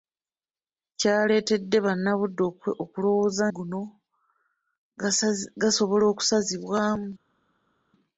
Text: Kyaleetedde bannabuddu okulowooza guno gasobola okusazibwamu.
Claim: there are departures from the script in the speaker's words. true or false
false